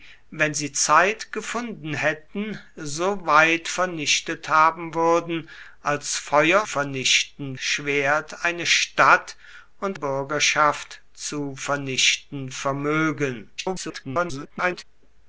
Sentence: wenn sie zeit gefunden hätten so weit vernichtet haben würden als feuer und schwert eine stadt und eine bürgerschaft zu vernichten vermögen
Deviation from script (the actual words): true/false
true